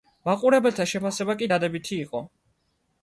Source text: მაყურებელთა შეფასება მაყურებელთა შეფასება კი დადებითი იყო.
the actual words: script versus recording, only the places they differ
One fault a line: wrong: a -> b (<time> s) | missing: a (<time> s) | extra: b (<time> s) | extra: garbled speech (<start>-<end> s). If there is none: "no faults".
missing: მაყურებელთა შეფასება (1.4 s)